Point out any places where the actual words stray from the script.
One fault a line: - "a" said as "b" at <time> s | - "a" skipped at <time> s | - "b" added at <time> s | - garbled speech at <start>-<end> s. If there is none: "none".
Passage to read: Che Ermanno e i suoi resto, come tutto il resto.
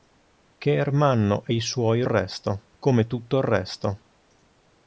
none